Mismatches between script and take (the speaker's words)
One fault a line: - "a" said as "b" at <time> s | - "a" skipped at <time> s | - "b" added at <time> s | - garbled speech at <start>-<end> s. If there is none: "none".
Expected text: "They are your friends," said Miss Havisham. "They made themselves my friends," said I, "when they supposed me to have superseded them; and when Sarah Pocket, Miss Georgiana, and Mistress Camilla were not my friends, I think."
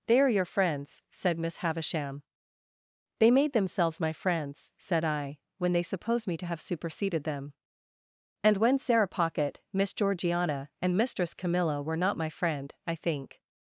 - "supposed" said as "suppose" at 5.8 s
- "friends" said as "friend" at 12.3 s